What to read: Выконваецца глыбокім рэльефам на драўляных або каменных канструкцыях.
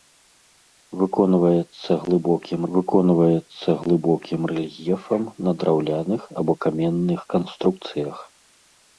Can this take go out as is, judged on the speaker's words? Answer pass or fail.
fail